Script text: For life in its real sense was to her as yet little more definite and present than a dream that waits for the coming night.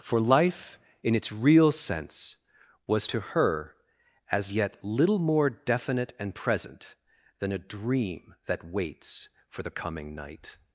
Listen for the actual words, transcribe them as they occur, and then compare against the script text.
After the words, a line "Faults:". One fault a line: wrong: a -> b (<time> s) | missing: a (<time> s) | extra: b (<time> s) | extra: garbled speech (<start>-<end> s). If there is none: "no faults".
For life in its real sense was to her as yet little more definite and present than a dream that waits for the coming night.
Faults:
no faults